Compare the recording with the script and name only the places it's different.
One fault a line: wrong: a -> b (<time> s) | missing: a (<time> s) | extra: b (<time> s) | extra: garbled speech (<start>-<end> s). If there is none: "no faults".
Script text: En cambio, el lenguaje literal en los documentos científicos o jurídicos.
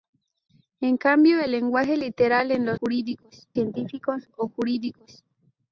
wrong: documentos -> jurídicos (2.7 s)